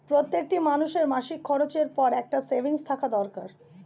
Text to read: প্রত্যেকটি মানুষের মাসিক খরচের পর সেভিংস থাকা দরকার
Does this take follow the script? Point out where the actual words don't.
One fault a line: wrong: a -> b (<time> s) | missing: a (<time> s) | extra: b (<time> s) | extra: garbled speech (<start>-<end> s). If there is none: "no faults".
extra: একটা (2.1 s)